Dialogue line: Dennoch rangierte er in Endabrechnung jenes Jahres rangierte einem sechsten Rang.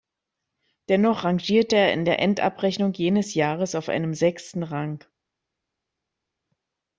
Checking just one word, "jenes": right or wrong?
right